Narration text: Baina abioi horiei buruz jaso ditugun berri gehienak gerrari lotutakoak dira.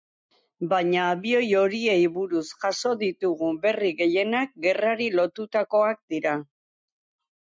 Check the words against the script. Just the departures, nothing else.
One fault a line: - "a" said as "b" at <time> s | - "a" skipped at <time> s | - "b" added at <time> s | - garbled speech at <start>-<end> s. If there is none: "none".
none